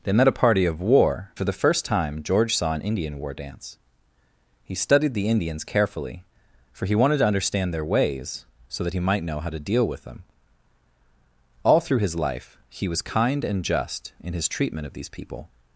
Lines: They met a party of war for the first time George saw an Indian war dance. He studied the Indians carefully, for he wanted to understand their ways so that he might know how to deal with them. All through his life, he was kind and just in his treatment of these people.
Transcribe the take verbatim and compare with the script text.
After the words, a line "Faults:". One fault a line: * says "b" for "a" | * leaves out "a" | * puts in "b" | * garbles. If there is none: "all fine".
They met a party of war for the first time George saw an Indian war dance. He studied the Indians carefully, for he wanted to understand their ways so that he might know how to deal with them. All through his life, he was kind and just in his treatment of these people.
Faults:
all fine